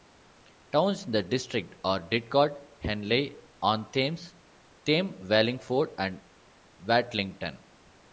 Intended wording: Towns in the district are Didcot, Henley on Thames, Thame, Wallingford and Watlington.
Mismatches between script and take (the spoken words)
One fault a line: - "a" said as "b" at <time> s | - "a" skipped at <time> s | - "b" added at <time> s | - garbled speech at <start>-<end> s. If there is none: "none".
none